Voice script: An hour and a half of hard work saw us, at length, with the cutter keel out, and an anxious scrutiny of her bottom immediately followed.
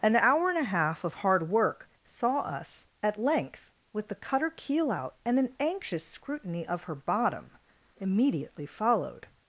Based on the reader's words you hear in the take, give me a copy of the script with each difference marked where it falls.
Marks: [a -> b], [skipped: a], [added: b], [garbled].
An hour and a half of hard work saw us, at length, with the cutter keel out, and an anxious scrutiny of her bottom immediately followed.